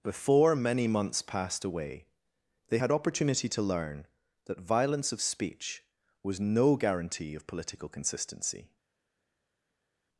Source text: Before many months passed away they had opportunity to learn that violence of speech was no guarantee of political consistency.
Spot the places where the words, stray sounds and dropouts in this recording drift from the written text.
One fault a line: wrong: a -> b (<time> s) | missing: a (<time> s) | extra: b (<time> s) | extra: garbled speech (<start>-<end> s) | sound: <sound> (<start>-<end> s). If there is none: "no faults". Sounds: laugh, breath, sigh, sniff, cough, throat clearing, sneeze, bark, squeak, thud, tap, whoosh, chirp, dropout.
no faults